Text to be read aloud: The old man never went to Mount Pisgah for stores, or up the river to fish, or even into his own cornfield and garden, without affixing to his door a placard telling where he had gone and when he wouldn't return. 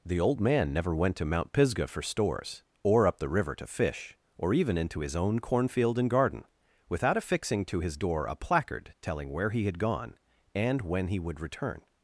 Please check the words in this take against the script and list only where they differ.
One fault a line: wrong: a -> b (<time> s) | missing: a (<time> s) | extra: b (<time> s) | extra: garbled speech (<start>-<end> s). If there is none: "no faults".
wrong: wouldn't -> would (11.2 s)